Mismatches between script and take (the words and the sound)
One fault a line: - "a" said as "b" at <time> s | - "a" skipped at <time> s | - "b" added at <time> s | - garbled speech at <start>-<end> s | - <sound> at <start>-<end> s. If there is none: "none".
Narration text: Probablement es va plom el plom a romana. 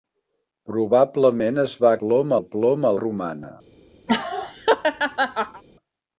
- laugh at 4.1-5.6 s